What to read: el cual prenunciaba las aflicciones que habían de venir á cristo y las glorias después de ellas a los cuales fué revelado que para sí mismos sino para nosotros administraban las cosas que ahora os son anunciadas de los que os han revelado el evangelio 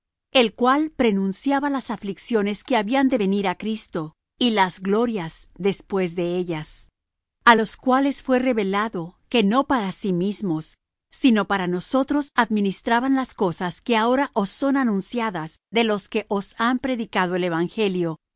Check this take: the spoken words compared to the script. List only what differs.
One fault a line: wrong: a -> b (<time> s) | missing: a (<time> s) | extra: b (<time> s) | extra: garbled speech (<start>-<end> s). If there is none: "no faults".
extra: no (9.4 s)
wrong: revelado -> predicado (16.8 s)